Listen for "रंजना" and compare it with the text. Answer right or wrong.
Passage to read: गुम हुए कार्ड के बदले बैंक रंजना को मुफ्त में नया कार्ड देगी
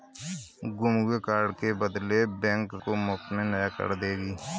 wrong